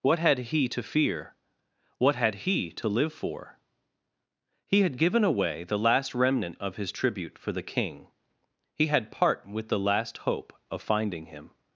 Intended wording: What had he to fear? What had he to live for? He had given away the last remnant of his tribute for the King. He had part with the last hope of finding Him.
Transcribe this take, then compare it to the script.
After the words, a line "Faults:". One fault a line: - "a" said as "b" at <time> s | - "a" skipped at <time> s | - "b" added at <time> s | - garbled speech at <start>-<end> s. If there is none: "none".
What had he to fear? What had he to live for? He had given away the last remnant of his tribute for the King. He had part with the last hope of finding Him.
Faults:
none